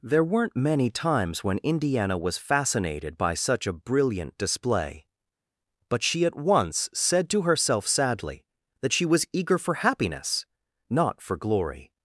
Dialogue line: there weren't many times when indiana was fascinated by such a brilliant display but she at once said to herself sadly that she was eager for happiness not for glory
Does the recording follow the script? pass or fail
pass